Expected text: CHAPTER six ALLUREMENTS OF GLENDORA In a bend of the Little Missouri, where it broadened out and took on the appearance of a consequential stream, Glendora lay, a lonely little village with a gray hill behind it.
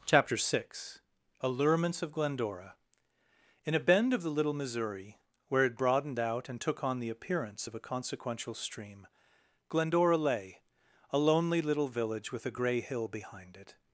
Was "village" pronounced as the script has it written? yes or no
yes